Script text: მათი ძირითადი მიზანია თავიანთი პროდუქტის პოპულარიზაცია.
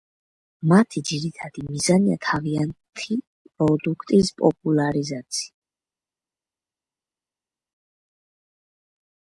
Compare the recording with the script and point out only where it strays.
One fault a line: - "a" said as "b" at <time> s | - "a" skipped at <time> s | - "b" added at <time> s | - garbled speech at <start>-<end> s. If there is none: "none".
none